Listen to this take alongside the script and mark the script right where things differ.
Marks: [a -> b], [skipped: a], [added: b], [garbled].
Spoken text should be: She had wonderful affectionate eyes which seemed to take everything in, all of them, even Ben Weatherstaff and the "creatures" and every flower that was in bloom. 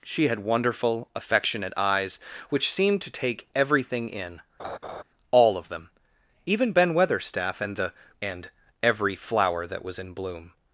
She had wonderful affectionate eyes which seemed to take everything in, all of them, even Ben Weatherstaff and the [skipped: "creatures"] and every flower that was in bloom.